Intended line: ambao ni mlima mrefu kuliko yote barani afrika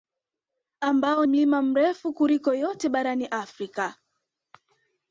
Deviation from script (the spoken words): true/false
true